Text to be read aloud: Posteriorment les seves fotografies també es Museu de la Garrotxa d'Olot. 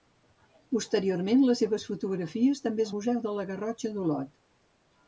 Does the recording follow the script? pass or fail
pass